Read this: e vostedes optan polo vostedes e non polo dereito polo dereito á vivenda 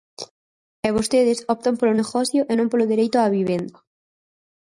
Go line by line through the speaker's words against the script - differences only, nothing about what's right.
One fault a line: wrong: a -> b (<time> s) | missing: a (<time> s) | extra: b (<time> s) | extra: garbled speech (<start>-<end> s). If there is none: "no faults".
wrong: vostedes -> negocio (2.0 s)
missing: polo dereito (3.2 s)